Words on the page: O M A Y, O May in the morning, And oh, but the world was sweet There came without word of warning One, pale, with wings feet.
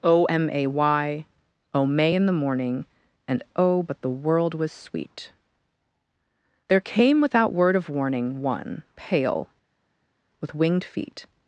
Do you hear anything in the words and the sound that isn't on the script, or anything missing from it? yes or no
yes